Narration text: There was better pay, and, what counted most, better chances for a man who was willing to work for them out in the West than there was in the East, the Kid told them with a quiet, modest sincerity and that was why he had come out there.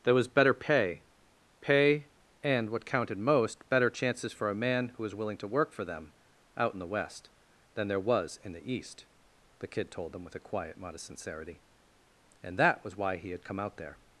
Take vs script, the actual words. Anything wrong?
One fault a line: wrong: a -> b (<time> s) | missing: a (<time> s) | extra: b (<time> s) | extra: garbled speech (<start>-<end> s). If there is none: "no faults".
extra: pay (1.6 s)